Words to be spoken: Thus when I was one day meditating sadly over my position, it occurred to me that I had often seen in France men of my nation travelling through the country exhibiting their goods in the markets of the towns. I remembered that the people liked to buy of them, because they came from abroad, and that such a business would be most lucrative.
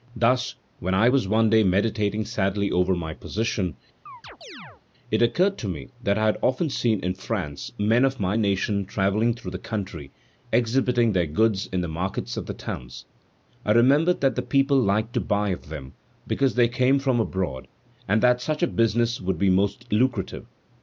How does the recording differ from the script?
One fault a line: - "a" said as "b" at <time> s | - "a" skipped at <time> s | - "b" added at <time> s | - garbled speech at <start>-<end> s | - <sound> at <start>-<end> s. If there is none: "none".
- chirp at 4.1-4.8 s